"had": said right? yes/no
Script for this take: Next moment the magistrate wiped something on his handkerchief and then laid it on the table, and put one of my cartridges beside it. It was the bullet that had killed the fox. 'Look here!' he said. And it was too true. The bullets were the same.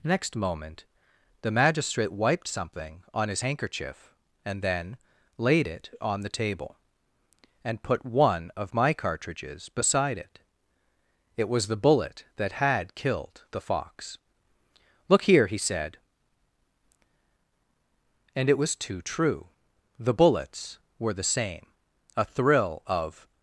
yes